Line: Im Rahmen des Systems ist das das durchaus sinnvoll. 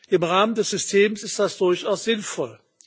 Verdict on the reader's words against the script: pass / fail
fail